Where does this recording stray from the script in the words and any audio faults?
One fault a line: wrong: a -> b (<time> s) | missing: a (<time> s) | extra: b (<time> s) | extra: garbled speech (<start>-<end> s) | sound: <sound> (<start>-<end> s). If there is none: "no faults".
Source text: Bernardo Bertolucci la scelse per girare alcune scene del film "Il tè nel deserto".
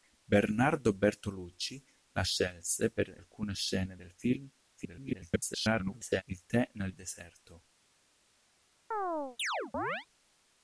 missing: girare (3.2 s)
extra: garbled speech (4.7-6.2 s)
sound: chirp (8.9-10.1 s)